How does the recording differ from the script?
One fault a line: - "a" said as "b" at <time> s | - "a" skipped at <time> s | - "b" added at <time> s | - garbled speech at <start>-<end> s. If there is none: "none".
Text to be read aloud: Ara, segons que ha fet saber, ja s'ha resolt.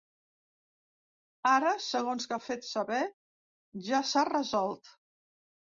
none